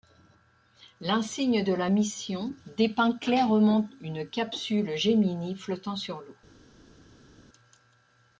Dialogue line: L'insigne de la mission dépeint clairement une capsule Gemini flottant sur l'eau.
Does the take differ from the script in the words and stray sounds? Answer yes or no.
no